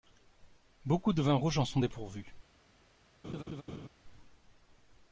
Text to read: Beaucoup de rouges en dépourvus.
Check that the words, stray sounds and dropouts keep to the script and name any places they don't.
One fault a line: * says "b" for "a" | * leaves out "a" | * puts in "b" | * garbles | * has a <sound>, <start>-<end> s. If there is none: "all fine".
* puts in "vins"
* puts in "sont"
* has a laugh, 3.2-3.9 s